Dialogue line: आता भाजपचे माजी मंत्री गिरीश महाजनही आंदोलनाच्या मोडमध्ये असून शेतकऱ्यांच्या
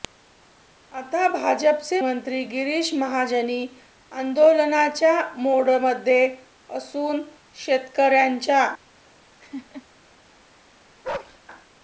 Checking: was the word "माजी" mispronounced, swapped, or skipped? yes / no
yes